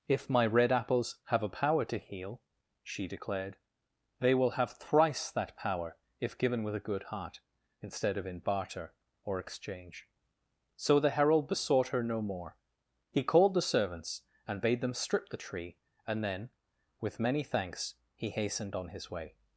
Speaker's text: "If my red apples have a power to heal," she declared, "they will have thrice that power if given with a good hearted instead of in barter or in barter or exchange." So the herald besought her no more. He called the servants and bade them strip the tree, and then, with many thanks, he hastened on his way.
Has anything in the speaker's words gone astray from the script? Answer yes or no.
yes